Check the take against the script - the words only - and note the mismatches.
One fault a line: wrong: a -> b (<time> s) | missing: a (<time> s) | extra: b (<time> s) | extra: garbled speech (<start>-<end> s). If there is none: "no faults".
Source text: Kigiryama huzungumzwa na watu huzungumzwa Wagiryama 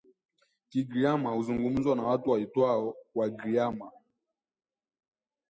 wrong: huzungumzwa -> waitwao (2.3 s)